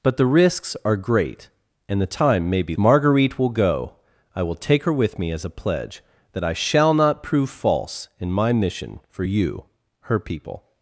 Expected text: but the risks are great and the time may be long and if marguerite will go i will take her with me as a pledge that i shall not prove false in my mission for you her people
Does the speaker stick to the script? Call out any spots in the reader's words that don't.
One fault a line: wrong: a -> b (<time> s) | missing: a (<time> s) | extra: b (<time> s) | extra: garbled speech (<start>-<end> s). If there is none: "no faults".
missing: long and if (2.8 s)